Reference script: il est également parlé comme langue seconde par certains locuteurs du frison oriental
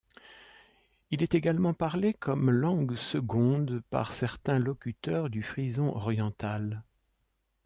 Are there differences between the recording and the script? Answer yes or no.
no